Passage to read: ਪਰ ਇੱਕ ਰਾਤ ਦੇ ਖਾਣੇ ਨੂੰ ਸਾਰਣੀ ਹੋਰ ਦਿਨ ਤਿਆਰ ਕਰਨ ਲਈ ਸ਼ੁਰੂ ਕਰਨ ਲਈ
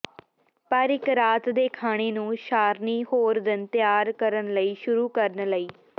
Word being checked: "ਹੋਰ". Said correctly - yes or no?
yes